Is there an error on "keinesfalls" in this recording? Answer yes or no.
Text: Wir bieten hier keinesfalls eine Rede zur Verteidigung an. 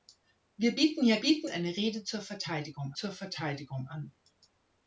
yes